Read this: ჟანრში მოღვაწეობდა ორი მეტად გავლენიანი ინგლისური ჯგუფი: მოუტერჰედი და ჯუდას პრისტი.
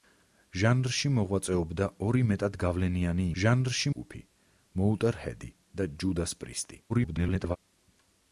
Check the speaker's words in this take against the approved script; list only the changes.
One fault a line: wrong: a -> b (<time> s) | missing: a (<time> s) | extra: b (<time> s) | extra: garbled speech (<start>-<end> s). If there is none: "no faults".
wrong: ინგლისური -> ჟანრში (3.4 s)
extra: garbled speech (6.9-7.6 s)